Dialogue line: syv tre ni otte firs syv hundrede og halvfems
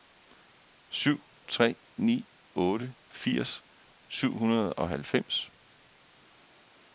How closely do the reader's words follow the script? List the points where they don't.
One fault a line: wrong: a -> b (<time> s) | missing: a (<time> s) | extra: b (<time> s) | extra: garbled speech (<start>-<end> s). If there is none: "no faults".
no faults